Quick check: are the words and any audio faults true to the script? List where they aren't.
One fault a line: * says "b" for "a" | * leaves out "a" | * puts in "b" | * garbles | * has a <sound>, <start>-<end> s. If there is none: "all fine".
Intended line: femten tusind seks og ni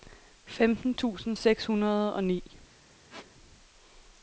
* puts in "hundrede"
* has a squeak, 3.1-3.3 s